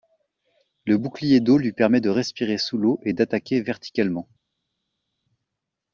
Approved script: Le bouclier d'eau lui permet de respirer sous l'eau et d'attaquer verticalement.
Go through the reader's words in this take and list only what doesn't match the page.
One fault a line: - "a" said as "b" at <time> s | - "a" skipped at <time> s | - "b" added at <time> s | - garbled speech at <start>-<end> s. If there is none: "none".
none